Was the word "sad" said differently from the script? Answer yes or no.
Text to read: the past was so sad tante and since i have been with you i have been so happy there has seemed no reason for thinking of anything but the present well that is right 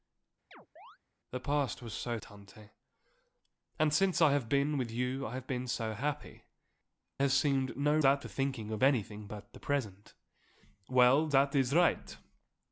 yes